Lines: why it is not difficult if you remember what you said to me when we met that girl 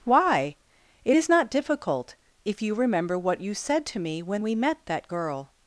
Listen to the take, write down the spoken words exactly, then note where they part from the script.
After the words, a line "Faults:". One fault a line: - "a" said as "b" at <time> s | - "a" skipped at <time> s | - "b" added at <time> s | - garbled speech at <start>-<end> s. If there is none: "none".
why it is not difficult if you remember what you said to me when we met that girl
Faults:
none